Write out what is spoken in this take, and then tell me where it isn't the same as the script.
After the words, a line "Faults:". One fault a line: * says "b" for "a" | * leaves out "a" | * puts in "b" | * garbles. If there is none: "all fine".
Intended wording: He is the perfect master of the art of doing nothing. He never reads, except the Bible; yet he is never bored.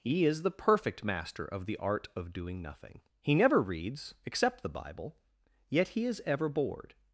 He is the perfect master of the art of doing nothing. He never reads, except the Bible; yet he is ever bored.
Faults:
* says "ever" for "never"